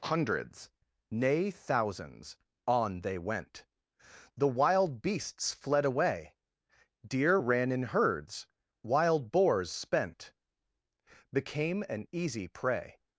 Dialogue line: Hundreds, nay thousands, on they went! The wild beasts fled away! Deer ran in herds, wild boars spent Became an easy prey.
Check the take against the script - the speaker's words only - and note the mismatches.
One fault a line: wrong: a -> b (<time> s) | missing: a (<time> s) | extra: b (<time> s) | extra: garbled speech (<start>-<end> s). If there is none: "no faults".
no faults